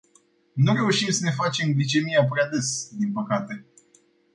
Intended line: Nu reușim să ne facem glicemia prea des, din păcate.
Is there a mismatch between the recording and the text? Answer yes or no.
no